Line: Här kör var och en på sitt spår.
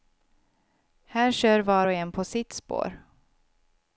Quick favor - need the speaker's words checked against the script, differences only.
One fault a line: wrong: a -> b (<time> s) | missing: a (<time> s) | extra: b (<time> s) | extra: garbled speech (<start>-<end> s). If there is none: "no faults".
no faults